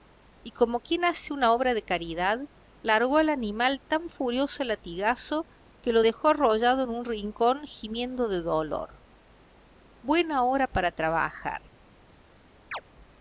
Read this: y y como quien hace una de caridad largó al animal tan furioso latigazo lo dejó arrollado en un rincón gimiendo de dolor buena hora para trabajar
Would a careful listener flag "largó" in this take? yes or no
no